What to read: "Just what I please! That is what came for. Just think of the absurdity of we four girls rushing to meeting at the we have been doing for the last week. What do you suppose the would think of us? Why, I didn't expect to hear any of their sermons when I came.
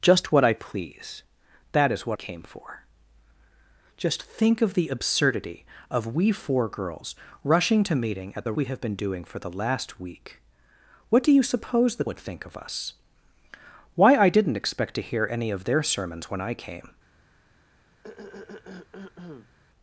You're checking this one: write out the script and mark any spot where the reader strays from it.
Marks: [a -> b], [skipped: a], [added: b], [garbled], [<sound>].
"Just what I please! That is what came for. Just think of the absurdity of we four girls rushing to meeting at the we have been doing for the last week. What do you suppose the would think of us? Why, I didn't expect to hear any of their sermons when I came. [throat clearing]